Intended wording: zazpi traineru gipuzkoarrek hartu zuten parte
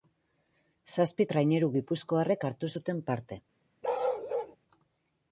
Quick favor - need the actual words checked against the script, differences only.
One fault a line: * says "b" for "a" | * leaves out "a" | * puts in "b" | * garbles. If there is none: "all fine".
all fine